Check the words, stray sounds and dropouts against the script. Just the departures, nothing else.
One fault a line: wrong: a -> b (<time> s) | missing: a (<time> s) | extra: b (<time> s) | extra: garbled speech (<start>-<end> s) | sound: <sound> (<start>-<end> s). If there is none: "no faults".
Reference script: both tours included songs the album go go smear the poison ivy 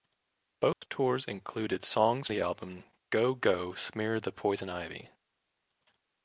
sound: dropout (0.7-0.8 s)